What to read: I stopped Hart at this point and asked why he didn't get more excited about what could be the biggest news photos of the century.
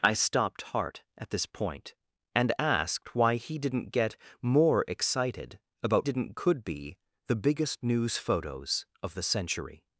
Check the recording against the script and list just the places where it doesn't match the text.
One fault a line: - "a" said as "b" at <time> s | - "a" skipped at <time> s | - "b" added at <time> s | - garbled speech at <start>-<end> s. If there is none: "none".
- "what" said as "didn't" at 6.0 s